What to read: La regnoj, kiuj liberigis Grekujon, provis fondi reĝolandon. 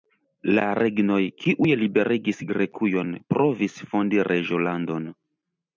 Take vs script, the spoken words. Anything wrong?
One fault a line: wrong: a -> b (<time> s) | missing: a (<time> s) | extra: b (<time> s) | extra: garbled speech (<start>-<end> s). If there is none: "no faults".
no faults